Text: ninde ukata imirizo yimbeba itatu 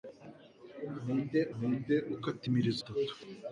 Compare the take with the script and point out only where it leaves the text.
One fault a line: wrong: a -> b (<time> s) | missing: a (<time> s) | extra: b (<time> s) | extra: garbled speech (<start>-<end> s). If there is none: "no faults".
extra: ninde (1.6 s)
missing: yimbeba (2.8 s)